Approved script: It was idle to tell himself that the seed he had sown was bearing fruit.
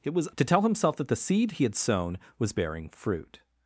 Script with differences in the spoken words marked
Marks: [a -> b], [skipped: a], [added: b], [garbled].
It was [skipped: idle] to tell himself that the seed he had sown was bearing fruit.